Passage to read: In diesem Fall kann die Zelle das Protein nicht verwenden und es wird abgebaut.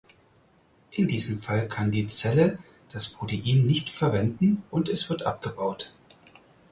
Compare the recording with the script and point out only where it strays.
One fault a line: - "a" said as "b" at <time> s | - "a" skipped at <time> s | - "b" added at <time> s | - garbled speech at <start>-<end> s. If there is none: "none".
none